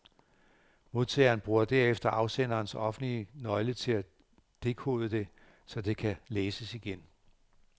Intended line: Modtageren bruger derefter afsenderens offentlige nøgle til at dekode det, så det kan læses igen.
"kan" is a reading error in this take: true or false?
false